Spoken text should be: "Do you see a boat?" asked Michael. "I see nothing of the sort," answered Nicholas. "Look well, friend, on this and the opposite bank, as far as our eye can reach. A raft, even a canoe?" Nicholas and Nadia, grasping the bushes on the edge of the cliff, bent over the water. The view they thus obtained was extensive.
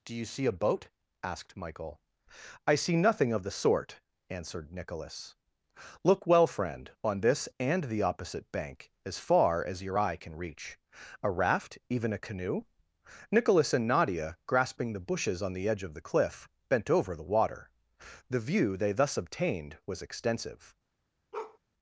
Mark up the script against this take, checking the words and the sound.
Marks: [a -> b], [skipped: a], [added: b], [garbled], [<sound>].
"Do you see a boat?" asked Michael. "I see nothing of the sort," answered Nicholas. "Look well, friend, on this and the opposite bank, as far as [our -> your] eye can reach. A raft, even a canoe?" Nicholas and Nadia, grasping the bushes on the edge of the cliff, bent over the water. The view they thus obtained was extensive. [bark]